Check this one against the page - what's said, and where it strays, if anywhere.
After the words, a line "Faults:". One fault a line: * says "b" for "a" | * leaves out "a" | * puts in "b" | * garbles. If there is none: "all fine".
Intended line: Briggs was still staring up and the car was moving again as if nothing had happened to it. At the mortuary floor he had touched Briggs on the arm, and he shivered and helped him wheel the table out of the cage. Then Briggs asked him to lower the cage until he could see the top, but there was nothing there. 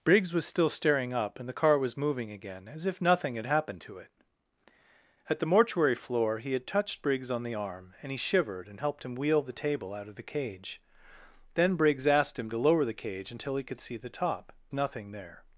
Briggs was still staring up and the car was moving again as if nothing had happened to it. At the mortuary floor he had touched Briggs on the arm, and he shivered and helped him wheel the table out of the cage. Then Briggs asked him to lower the cage until he could see the top, nothing there.
Faults:
* leaves out "but there was"